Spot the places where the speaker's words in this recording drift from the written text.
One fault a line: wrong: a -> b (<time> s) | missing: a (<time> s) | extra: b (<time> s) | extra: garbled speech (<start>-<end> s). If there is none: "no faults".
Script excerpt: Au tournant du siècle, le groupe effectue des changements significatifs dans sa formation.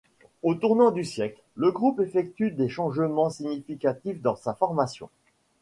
no faults